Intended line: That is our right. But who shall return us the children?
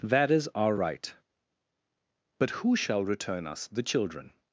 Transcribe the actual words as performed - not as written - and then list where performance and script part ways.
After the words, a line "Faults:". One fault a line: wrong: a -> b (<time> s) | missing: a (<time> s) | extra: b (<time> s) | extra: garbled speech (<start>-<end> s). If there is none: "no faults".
That is our right. But who shall return us the children?
Faults:
no faults